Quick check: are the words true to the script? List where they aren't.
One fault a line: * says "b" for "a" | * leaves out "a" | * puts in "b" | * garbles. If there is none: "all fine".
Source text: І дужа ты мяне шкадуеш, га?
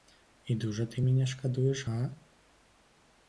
all fine